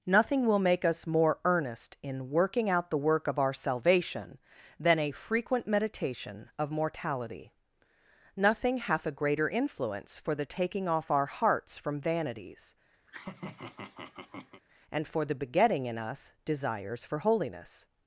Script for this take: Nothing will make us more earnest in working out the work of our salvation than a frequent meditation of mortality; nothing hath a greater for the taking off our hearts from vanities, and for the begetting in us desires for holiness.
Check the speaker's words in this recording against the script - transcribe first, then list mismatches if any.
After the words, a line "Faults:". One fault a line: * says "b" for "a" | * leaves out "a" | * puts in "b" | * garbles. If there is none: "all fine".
Nothing will make us more earnest in working out the work of our salvation than a frequent meditation of mortality; nothing hath a greater influence for the taking off our hearts from vanities, and for the begetting in us desires for holiness.
Faults:
* puts in "influence"